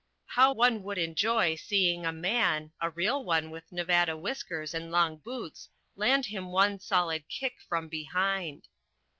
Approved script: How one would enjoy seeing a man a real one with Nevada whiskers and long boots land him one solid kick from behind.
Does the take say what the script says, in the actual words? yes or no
yes